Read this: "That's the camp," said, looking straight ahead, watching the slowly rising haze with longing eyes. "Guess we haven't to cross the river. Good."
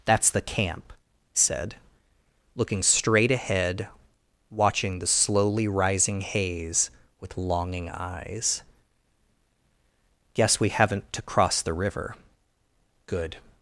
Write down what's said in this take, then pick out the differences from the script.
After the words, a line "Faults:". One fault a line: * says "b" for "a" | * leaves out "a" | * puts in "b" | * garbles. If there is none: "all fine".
"That's the camp," said, looking straight ahead, watching the slowly rising haze with longing eyes. "Guess we haven't to cross the river. Good."
Faults:
all fine